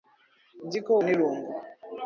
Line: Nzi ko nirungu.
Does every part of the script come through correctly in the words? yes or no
yes